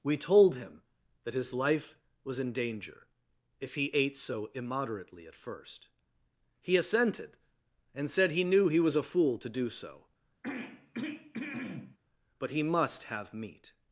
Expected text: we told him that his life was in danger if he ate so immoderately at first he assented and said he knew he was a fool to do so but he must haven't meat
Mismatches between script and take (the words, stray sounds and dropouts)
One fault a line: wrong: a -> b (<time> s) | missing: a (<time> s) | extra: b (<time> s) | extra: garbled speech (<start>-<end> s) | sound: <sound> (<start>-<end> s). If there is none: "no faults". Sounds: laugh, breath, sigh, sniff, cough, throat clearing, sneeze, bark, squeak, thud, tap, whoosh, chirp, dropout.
sound: throat clearing (10.4-12.0 s)
wrong: haven't -> have (13.0 s)